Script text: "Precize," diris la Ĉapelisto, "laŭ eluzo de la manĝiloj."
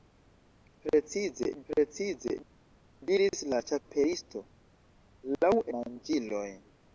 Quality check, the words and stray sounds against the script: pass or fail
fail